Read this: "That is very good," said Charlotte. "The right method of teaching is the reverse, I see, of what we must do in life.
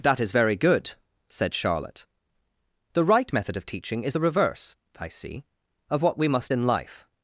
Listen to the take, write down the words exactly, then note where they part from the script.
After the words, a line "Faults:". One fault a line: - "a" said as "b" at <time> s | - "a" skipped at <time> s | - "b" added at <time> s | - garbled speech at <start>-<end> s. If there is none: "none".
"That is very good," said Charlotte. "The right method of teaching is the reverse, I see, of what we must in life.
Faults:
- "do" skipped at 6.5 s